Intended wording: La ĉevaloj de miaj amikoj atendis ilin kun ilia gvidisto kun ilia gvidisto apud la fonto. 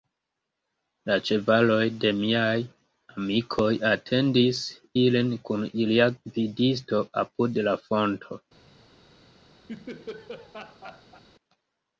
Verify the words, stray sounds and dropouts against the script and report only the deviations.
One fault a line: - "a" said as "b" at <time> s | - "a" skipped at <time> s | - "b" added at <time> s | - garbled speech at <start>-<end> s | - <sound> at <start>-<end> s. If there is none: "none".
- "kun ilia gvidisto" skipped at 7.0 s
- laugh at 9.7-11.2 s